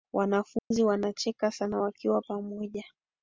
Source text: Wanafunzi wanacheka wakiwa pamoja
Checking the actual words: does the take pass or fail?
fail